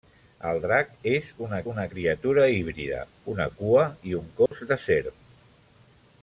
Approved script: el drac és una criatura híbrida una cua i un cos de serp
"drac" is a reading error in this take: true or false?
false